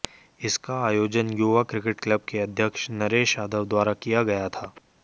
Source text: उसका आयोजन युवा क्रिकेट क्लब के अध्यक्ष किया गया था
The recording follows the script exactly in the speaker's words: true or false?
false